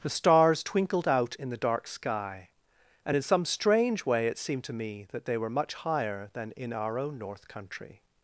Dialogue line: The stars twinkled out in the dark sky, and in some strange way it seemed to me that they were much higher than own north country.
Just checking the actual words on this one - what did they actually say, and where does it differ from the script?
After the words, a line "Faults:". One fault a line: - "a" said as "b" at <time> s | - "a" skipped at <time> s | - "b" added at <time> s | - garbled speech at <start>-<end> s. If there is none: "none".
The stars twinkled out in the dark sky, and in some strange way it seemed to me that they were much higher than in our own north country.
Faults:
- "in our" added at 6.6 s